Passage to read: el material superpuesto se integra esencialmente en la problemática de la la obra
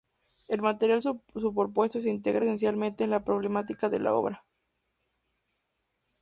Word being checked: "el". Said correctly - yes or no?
yes